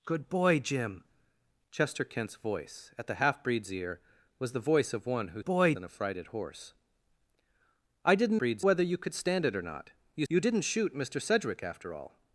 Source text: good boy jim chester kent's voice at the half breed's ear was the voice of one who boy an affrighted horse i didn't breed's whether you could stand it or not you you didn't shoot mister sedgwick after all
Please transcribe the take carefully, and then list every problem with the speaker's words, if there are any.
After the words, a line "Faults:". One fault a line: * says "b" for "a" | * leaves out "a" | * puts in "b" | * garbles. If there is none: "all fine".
good boy jim chester kent's voice at the half breed's ear was the voice of one who boy an affrighted horse i didn't breed's whether you could stand it or not you you didn't shoot mister sedgwick after all
Faults:
all fine